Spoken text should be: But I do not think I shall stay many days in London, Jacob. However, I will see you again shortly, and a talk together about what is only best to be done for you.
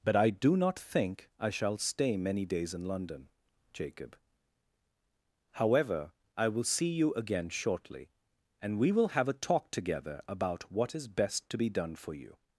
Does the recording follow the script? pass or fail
fail